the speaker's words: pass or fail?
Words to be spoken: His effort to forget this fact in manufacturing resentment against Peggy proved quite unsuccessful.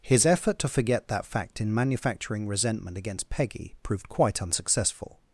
fail